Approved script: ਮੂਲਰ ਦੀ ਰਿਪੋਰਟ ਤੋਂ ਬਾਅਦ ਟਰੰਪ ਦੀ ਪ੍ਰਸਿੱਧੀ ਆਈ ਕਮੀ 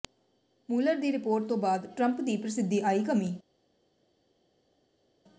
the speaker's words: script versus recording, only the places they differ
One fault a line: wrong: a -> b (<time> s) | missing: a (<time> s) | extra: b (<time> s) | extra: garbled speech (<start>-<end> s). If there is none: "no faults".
no faults